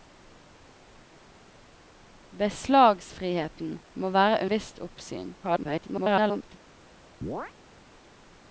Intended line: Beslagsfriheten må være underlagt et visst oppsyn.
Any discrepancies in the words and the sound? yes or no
yes